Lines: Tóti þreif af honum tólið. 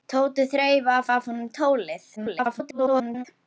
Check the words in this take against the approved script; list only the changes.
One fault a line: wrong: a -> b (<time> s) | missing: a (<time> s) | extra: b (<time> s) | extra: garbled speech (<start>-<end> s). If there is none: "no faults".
extra: af (1.1 s)
extra: garbled speech (2.2-3.3 s)